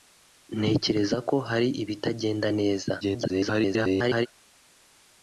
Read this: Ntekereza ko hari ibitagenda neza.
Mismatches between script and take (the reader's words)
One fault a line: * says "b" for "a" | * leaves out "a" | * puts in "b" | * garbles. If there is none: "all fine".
* garbles